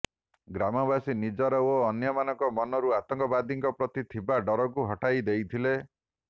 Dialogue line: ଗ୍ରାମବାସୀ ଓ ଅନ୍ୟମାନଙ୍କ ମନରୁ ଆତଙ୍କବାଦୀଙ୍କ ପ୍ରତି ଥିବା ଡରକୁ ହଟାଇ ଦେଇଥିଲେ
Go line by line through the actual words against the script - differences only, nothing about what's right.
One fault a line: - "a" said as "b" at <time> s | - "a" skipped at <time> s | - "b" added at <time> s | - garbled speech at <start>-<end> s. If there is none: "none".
- "ନିଜର" added at 1.2 s